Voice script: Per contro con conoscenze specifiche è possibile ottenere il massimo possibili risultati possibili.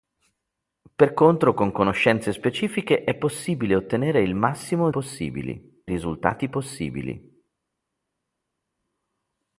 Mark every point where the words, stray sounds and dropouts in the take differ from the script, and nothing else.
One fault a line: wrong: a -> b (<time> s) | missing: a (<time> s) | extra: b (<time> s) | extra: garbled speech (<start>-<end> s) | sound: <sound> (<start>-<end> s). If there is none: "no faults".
no faults